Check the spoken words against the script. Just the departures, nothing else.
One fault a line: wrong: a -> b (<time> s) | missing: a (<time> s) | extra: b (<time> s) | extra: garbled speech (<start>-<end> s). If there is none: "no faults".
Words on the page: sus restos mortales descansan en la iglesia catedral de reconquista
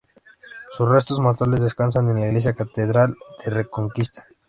no faults